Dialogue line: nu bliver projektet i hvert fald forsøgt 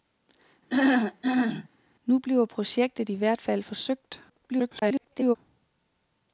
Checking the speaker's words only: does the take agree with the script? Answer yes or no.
no